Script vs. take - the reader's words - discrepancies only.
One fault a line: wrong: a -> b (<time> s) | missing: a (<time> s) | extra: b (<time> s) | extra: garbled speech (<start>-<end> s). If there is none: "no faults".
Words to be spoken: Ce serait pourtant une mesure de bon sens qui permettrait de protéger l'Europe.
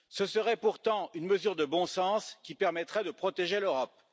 no faults